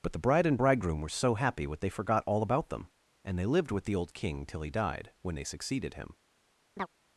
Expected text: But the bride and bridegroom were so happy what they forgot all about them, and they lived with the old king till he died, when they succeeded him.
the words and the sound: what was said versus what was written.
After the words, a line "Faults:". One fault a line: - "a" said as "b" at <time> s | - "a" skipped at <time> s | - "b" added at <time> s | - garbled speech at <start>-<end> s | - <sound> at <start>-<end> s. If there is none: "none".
But the bride and bridegroom were so happy what they forgot all about them, and they lived with the old king till he died, when they succeeded him.
Faults:
- chirp at 6.8-6.9 s